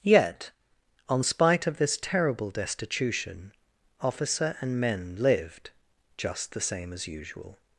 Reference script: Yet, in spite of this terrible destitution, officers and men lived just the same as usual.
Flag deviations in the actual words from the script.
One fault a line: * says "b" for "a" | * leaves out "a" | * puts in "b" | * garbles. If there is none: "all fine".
* says "on" for "in"
* says "officer" for "officers"